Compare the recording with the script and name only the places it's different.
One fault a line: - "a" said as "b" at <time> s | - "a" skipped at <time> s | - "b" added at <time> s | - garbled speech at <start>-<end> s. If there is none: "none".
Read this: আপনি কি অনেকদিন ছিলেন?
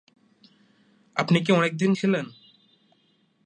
none